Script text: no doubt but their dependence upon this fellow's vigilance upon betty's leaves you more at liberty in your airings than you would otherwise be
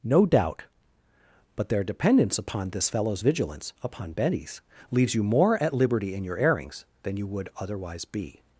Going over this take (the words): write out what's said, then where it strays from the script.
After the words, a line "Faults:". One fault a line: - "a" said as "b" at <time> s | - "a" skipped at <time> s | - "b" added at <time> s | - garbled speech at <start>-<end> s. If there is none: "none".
no doubt but their dependence upon this fellow's vigilance upon betty's leaves you more at liberty in your airings than you would otherwise be
Faults:
none